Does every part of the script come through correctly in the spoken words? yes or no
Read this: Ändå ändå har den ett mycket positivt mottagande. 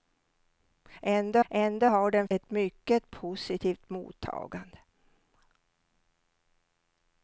yes